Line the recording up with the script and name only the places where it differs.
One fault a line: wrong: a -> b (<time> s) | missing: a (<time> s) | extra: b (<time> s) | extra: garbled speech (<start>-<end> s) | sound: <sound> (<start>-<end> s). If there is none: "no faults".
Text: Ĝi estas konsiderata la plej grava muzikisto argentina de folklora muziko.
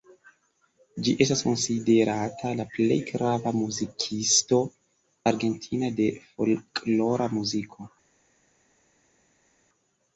no faults